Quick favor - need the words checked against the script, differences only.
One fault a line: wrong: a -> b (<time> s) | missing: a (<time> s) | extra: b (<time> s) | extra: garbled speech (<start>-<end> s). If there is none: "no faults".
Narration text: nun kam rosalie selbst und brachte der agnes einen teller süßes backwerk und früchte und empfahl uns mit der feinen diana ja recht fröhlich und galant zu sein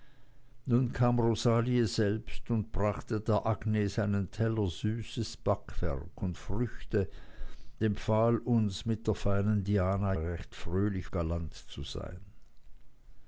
missing: und (7.1 s)
missing: ja (10.1 s)
missing: und (11.1 s)